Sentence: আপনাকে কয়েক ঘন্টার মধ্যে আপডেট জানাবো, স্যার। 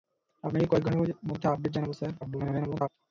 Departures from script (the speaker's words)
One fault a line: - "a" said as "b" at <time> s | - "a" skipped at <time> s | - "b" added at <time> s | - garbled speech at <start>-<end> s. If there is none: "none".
- garbled speech at 2.2-2.9 s